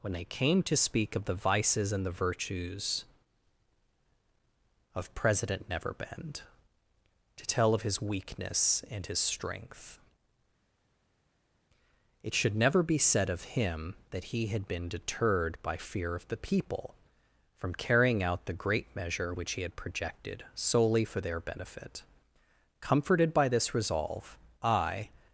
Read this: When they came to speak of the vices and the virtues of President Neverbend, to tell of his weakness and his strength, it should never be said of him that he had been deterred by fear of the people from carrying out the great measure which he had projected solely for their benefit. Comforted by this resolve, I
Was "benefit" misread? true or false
false